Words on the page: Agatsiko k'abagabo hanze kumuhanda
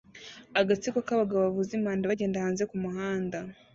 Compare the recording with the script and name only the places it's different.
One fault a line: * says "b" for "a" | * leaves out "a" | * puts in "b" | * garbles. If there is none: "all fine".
* puts in "bavuza impanda bagenda"